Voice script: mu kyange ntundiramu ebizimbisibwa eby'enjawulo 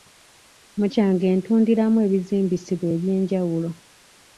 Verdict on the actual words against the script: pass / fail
pass